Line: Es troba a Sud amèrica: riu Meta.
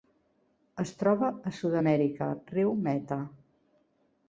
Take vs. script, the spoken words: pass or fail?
pass